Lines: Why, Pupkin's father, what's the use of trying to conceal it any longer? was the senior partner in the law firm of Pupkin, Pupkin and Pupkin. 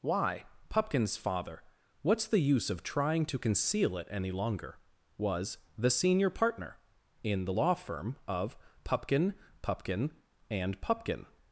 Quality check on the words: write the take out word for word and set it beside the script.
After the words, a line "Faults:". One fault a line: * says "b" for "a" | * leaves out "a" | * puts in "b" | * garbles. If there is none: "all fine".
Why, Pupkin's father, what's the use of trying to conceal it any longer? was the senior partner in the law firm of Pupkin, Pupkin and Pupkin.
Faults:
all fine